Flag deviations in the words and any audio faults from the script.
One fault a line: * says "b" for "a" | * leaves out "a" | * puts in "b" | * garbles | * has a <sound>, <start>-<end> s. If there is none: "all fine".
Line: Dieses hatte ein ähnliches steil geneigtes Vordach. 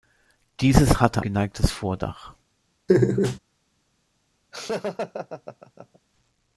* leaves out "ein ähnliches steil"
* has a laugh, 2.9-3.4 s
* has a laugh, 4.5-6.0 s